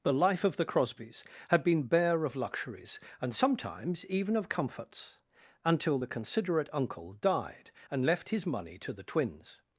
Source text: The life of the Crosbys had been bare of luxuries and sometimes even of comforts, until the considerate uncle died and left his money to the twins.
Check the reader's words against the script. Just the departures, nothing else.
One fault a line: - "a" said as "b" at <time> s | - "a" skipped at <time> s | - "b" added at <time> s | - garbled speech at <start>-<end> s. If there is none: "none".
none